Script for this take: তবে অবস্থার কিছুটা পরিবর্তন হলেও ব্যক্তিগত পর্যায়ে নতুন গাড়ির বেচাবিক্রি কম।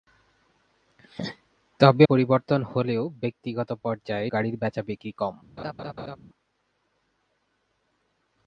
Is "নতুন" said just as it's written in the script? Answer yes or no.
no